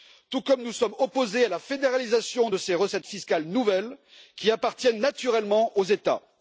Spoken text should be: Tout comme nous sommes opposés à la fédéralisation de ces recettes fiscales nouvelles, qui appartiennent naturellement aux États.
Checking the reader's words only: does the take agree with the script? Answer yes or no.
yes